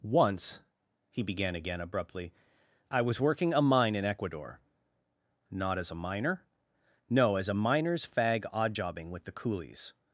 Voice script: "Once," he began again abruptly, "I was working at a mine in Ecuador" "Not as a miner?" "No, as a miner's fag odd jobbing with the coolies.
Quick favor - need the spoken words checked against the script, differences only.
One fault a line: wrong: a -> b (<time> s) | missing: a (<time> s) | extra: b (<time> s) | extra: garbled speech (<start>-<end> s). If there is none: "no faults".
missing: at (3.5 s)